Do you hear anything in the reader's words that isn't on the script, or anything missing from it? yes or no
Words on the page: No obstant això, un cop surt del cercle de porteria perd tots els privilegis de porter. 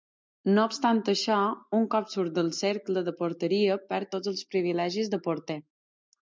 no